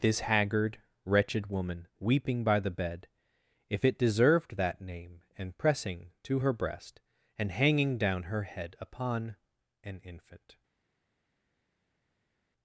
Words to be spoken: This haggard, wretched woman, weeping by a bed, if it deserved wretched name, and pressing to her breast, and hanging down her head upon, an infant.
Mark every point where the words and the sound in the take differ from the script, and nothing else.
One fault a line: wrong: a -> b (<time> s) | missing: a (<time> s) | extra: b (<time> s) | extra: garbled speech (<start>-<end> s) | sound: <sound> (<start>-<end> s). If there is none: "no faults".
wrong: a -> the (2.6 s)
wrong: wretched -> that (4.5 s)